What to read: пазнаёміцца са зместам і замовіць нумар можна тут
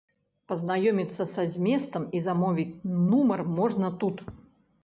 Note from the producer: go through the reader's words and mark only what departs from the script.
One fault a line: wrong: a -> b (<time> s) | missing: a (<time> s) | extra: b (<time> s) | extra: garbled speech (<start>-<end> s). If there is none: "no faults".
no faults